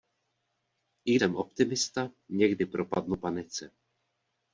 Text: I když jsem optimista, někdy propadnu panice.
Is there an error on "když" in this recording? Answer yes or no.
yes